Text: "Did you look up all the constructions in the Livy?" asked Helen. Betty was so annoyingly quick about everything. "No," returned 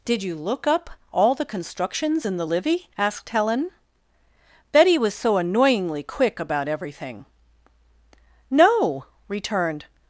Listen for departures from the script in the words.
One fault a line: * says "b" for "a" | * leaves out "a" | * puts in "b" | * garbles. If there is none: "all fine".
all fine